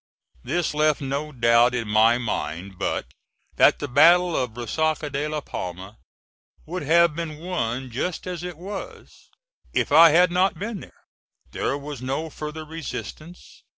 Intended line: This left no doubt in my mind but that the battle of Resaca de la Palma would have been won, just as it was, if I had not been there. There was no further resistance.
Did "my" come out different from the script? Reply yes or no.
no